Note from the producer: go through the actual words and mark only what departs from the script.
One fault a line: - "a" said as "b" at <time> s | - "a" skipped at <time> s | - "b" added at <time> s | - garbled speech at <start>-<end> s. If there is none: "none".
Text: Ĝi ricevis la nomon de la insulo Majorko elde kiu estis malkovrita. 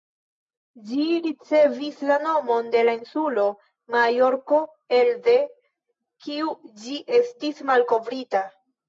- "ĝi" added at 6.8 s